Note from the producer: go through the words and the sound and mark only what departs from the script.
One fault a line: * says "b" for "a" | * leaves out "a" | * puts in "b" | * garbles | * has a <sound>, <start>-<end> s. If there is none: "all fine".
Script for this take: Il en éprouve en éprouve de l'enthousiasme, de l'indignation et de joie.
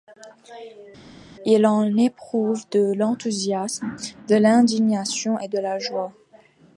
* leaves out "en éprouve"
* puts in "la"